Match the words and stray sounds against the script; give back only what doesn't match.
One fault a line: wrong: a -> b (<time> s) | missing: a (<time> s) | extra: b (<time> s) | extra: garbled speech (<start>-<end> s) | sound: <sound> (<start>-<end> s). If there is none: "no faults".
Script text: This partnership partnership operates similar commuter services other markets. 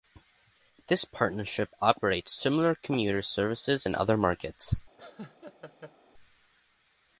missing: partnership (1.7 s)
extra: in (3.8 s)
sound: laugh (5.0-5.9 s)